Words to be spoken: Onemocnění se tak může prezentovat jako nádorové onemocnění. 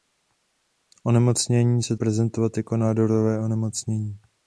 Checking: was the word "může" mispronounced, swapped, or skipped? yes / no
yes